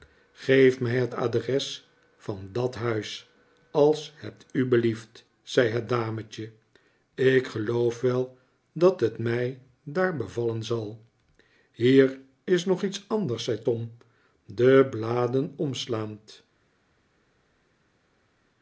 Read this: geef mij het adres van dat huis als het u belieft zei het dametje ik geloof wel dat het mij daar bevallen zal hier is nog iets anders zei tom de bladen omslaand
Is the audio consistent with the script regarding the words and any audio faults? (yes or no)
yes